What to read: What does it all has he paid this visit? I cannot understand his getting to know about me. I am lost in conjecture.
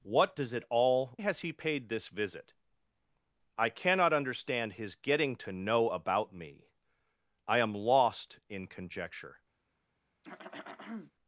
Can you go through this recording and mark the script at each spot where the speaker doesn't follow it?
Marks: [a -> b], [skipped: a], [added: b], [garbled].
What does it all has he paid this visit? I cannot understand his getting to know about me. I am lost in conjecture.